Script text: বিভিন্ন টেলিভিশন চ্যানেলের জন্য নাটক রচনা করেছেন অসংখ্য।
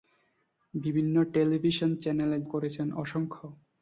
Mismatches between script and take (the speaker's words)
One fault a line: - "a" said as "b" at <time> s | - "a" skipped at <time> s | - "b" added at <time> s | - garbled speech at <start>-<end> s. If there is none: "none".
- "জন্য নাটক রচনা" skipped at 2.4 s